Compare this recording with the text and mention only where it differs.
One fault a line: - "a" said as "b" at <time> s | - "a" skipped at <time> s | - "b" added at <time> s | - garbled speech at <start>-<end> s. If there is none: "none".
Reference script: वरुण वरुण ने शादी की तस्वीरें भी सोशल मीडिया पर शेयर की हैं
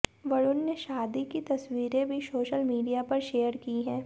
- "वरुण" skipped at 0.6 s